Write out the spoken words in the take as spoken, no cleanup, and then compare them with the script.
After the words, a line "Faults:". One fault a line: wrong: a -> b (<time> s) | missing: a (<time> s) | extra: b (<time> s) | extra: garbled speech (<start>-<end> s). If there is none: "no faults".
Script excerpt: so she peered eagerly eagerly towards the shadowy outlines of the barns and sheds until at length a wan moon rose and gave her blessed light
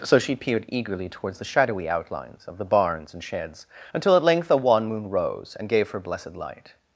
so she peered eagerly towards the shadowy outlines of the barns and sheds until at length a wan moon rose and gave her blessed light
Faults:
missing: eagerly (1.1 s)